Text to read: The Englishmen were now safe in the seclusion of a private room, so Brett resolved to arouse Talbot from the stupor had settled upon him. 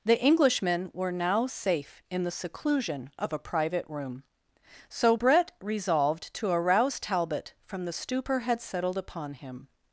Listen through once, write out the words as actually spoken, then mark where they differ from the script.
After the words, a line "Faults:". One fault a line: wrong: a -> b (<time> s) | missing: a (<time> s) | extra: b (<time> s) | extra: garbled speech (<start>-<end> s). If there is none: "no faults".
The Englishmen were now safe in the seclusion of a private room, so Brett resolved to arouse Talbot from the stupor had settled upon him.
Faults:
no faults